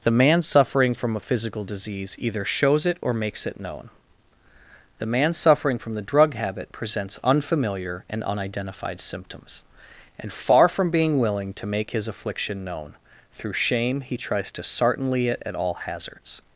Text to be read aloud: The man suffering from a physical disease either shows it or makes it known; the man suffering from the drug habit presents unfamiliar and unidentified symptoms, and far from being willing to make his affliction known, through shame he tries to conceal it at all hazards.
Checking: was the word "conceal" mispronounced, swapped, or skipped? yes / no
yes